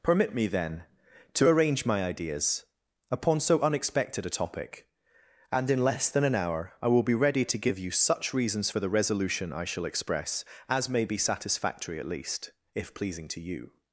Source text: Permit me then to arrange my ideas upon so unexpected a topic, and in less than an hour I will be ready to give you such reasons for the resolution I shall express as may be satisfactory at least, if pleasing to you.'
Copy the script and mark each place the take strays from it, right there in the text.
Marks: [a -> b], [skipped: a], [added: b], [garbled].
Permit me then to arrange my ideas upon so unexpected a topic, and in less than an hour I will be ready to give you such reasons for the resolution I shall express as may be satisfactory at least, if pleasing to you.'